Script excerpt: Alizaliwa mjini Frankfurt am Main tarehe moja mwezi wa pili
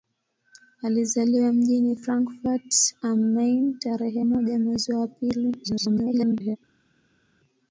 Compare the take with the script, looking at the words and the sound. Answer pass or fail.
fail